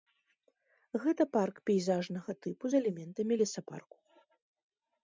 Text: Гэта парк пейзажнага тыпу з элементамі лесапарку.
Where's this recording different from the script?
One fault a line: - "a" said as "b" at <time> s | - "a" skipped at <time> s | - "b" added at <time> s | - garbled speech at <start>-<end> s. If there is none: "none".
none